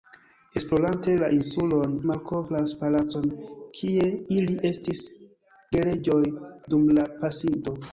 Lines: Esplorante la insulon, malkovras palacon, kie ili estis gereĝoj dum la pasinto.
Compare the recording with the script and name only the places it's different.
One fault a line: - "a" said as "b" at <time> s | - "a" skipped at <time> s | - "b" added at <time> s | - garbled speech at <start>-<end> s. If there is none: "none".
none